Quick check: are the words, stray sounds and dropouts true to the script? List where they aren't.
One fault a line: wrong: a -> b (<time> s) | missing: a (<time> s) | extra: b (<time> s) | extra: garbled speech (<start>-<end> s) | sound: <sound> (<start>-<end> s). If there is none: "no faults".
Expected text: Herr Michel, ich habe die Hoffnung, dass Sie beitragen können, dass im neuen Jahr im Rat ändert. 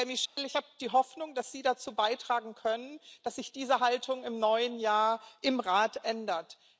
sound: dropout (0.3-0.4 s)
extra: dazu (1.6 s)
extra: sich diese Haltung (3.4 s)